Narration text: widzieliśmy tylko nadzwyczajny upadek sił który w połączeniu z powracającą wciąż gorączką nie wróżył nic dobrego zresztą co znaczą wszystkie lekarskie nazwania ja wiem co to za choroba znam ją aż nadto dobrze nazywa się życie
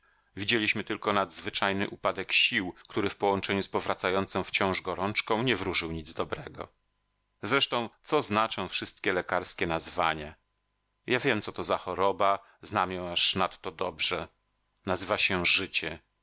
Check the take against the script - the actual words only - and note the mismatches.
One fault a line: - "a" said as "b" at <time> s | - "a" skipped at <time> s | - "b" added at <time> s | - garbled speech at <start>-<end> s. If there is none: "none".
none